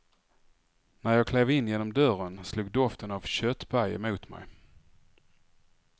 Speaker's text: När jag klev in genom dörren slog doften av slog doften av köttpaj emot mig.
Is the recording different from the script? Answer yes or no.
yes